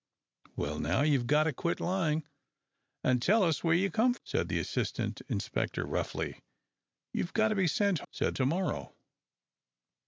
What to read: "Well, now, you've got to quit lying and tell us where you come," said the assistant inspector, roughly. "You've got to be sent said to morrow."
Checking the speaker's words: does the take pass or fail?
pass